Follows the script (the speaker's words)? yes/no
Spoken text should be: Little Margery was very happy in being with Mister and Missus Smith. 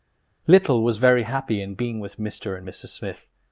no